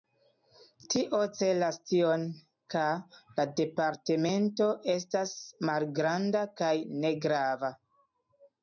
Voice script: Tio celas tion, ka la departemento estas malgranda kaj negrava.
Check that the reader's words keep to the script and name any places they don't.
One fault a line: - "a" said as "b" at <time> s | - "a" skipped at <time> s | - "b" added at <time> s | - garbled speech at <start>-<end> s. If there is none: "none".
none